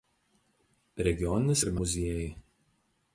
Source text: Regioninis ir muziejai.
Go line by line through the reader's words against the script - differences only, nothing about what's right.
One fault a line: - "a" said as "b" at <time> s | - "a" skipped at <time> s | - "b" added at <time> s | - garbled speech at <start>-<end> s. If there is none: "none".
none